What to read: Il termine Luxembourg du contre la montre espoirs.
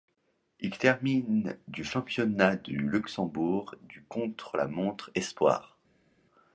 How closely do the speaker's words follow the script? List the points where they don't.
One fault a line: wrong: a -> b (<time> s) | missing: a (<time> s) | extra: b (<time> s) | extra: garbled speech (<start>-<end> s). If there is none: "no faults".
extra: du championnat du (1.7 s)